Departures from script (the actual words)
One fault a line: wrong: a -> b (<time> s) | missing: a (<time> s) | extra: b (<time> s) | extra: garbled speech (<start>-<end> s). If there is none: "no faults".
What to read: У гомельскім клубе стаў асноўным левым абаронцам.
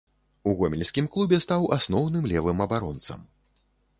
no faults